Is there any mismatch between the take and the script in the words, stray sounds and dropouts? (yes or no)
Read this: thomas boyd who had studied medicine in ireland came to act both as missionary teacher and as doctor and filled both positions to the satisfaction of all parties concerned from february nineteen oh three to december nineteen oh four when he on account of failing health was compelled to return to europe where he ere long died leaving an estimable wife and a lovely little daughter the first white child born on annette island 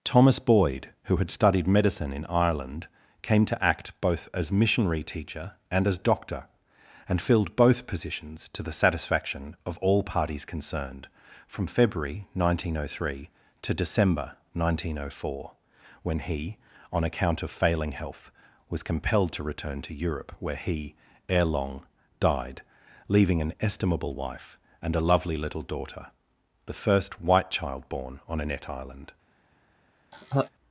yes